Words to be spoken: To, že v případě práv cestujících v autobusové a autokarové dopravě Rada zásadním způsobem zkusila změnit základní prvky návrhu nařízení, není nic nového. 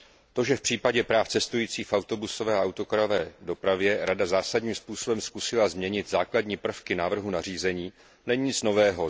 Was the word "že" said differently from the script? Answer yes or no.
no